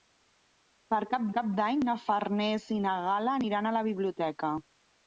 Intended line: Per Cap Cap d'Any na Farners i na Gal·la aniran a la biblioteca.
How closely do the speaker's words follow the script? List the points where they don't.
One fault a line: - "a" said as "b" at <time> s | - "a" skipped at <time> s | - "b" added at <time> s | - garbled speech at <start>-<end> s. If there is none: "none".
none